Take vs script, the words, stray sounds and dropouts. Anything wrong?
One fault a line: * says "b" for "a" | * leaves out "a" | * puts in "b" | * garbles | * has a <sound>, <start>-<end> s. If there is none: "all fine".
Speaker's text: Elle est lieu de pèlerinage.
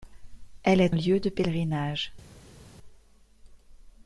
all fine